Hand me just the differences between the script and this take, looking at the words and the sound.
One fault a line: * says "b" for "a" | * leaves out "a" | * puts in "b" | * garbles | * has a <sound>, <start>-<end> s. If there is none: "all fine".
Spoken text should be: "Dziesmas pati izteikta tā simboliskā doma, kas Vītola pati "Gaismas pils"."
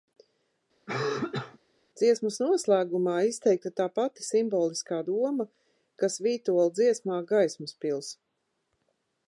* has a cough, 0.9-1.6 s
* says "noslēgumā" for "pati"
* puts in "pati"
* says "dziesmā" for "pati"